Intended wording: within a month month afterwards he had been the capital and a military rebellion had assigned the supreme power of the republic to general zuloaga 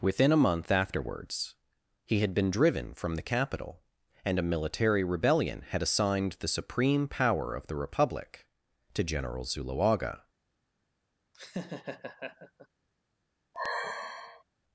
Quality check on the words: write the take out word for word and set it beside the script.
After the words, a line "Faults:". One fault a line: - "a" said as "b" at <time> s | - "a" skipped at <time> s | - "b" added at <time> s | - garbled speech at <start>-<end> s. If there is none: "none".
within a month afterwards he had been driven from the capital and a military rebellion had assigned the supreme power of the republic to general zuloaga
Faults:
- "month" skipped at 0.7 s
- "driven from" added at 2.5 s